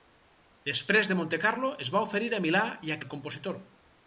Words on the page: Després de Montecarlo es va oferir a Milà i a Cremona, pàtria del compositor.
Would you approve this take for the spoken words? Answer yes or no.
no